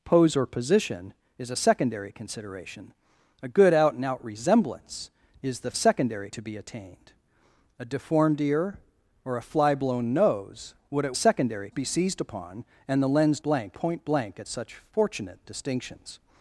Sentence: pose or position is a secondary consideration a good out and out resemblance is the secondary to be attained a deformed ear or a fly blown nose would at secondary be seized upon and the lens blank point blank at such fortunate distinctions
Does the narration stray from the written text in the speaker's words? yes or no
no